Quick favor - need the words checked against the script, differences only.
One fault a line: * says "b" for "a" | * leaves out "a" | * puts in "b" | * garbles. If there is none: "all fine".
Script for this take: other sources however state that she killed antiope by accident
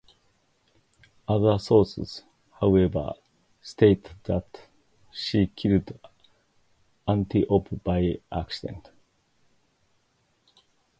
all fine